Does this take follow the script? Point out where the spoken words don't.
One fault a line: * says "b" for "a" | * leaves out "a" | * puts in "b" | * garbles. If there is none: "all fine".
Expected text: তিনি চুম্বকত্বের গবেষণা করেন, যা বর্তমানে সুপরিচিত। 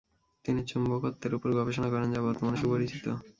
* puts in "উপর"